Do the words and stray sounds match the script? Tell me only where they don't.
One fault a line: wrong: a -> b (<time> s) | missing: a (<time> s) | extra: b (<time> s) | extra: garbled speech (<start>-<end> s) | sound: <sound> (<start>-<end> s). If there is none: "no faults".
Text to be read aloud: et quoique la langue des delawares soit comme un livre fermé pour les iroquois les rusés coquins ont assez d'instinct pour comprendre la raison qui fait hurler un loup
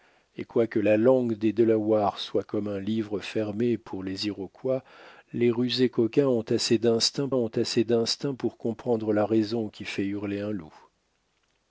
extra: ont assez d'instinct (7.3 s)